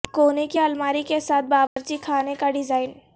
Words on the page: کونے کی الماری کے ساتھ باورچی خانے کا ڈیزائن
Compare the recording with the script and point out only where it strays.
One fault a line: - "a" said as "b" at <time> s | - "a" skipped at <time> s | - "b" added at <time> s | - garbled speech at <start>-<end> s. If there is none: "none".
none